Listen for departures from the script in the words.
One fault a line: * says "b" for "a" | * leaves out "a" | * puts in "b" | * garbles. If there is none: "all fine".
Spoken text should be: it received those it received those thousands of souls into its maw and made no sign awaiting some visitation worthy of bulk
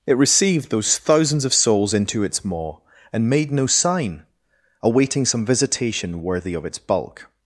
* leaves out "it received those"
* puts in "its"